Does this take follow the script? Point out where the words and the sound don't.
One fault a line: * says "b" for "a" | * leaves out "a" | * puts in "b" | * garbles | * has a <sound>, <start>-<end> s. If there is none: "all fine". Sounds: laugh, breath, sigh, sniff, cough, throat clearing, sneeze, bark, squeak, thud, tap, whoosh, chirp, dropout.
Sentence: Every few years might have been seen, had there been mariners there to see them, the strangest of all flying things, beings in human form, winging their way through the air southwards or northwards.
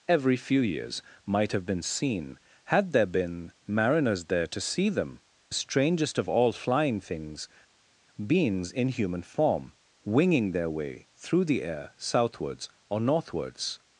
* leaves out "the"